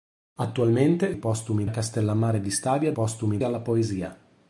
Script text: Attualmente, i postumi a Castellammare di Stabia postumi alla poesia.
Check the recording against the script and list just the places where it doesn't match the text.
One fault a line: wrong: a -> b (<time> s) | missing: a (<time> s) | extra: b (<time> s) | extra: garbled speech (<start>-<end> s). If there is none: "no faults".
no faults